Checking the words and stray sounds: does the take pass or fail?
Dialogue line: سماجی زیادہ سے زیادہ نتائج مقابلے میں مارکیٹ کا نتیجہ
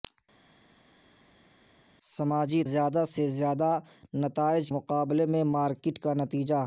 pass